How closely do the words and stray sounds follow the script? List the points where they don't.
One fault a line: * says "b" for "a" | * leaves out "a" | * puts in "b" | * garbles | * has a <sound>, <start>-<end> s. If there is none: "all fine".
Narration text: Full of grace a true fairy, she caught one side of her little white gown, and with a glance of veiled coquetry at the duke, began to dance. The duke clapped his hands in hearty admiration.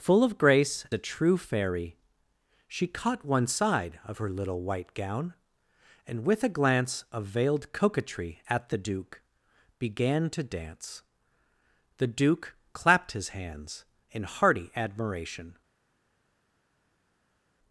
all fine